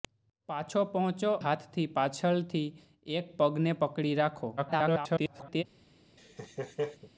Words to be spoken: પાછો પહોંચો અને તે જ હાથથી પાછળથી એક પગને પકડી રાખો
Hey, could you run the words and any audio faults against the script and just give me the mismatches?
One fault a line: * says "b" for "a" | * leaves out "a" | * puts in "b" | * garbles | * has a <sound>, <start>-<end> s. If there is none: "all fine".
* leaves out "અને તે જ"
* garbles
* has a laugh, 6.2-7.1 s